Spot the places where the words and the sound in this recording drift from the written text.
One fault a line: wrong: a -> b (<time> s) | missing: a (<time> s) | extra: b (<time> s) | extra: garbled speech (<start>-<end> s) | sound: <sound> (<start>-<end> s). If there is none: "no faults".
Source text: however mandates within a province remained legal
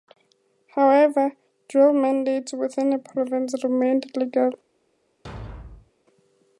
extra: dual (1.7 s)
sound: thud (5.2-5.9 s)